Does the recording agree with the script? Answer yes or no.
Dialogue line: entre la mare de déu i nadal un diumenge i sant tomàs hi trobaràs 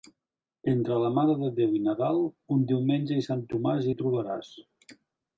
yes